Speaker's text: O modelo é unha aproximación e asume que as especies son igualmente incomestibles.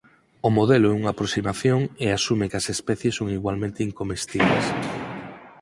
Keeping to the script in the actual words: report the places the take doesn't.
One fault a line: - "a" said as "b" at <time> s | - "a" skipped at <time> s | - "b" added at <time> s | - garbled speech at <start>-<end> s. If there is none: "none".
none